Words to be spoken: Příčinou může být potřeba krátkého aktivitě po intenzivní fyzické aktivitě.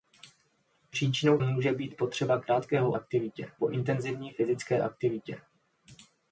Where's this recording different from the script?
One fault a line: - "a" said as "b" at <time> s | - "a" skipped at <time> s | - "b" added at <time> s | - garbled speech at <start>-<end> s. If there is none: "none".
none